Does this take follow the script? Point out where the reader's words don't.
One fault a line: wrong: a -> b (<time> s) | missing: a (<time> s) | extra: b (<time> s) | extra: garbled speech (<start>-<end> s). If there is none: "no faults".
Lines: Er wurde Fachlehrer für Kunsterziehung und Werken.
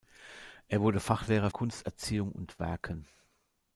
missing: für (1.5 s)